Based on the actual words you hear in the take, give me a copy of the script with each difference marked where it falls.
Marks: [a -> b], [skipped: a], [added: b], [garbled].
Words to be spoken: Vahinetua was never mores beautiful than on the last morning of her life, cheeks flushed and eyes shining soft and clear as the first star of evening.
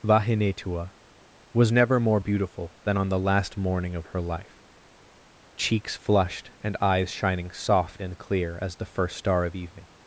Vahinetua was never [mores -> more] beautiful than on the last morning of her life, cheeks flushed and eyes shining soft and clear as the first star of evening.